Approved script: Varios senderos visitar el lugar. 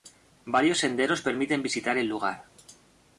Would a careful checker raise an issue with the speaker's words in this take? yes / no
yes